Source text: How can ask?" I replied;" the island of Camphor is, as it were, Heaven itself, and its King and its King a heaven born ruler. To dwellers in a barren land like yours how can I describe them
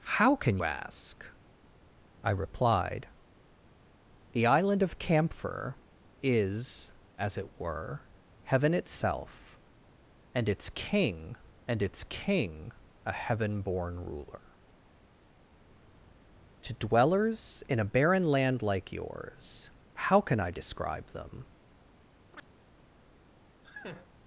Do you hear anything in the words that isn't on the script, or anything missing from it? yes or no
no